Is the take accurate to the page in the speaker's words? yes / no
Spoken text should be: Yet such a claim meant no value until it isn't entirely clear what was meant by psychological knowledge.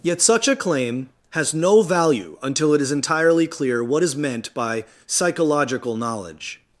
no